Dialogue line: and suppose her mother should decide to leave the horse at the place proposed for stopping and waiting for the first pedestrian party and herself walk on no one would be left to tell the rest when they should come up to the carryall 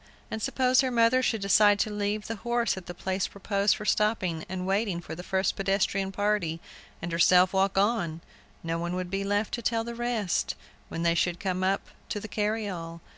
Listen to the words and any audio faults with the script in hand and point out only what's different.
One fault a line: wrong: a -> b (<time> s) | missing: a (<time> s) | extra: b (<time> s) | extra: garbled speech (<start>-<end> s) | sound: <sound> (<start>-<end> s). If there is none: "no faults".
no faults